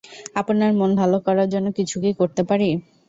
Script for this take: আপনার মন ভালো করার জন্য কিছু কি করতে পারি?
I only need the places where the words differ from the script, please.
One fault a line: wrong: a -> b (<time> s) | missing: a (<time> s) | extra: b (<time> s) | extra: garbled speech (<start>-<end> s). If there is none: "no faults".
no faults